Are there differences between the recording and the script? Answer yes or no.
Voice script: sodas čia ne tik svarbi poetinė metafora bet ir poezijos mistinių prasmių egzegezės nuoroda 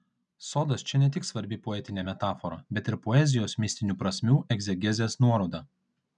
no